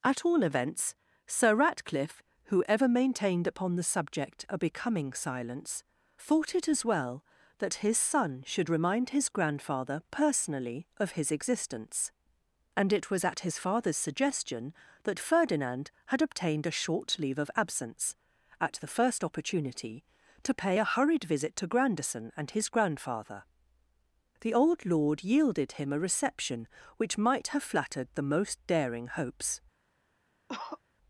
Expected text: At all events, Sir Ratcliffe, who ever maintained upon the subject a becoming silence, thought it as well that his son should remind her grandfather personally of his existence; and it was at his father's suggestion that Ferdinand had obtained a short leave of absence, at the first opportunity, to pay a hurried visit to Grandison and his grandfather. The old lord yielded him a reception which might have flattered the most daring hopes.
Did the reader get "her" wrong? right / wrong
wrong